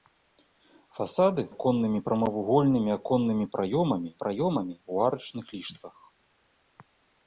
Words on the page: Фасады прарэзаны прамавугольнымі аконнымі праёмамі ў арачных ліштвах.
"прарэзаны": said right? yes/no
no